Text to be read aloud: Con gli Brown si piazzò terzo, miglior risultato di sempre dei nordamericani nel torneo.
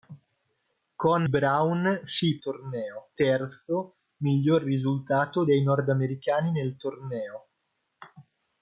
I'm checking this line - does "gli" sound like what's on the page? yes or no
no